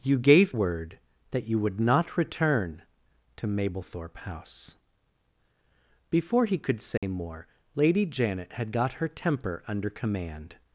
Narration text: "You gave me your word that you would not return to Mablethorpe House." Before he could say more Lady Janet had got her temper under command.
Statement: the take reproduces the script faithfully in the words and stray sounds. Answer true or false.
false